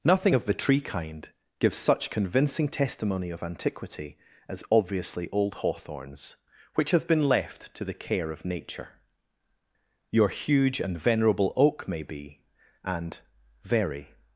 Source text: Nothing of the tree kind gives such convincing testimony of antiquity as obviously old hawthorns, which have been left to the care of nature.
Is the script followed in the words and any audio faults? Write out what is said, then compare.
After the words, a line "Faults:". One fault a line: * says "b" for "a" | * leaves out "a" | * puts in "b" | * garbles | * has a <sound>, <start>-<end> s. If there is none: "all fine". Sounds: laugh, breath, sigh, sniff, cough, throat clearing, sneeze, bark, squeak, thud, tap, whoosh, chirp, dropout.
Nothing of the tree kind gives such convincing testimony of antiquity as obviously old hawthorns, which have been left to the care of nature. Your huge and venerable oak may be, and very
Faults:
* puts in "Your huge and venerable oak may be and very"